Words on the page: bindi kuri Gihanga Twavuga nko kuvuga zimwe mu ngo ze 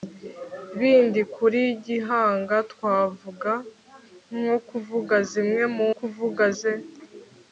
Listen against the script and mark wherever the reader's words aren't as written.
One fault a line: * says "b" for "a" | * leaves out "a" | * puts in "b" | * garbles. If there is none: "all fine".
* says "kuvuga" for "ngo"